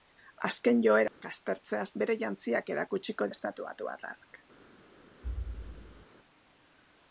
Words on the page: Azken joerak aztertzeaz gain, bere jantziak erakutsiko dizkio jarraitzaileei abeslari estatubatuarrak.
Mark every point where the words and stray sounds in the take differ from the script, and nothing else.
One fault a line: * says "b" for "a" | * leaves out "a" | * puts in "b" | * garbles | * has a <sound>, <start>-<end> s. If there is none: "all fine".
* has a dropout, 1.1-1.2 s
* leaves out "gain"
* leaves out "dizkio jarraitzaileei abeslari"
* has a thud, 5.2-6.1 s